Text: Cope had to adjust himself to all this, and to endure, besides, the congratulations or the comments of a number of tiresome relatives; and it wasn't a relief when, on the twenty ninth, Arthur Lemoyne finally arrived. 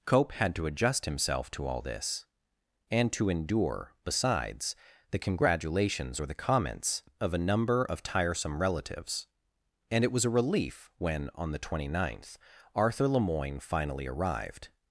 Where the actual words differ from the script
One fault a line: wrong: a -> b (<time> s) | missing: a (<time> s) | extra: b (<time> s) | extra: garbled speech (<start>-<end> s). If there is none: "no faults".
wrong: wasn't -> was (10.1 s)